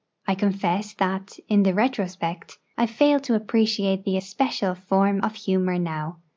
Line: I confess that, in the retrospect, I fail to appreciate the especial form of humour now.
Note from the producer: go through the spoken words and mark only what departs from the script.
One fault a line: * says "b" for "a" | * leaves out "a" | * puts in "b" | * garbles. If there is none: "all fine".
all fine